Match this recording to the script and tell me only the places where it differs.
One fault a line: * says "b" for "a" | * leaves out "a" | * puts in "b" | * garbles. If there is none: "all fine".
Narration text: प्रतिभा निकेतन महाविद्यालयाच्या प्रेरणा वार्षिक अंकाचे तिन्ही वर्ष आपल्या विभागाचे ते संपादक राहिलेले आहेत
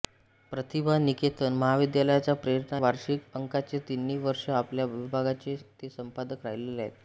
all fine